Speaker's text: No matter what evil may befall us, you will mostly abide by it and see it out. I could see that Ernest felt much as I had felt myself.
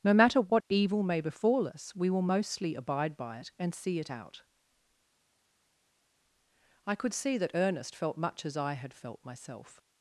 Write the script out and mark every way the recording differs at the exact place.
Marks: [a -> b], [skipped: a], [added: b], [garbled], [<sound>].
No matter what evil may befall us, [you -> we] will mostly abide by it and see it out. I could see that Ernest felt much as I had felt myself.